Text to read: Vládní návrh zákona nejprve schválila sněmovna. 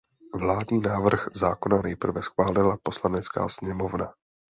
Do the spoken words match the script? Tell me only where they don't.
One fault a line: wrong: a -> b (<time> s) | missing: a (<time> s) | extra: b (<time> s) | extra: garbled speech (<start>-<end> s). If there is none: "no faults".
extra: poslanecká (2.8 s)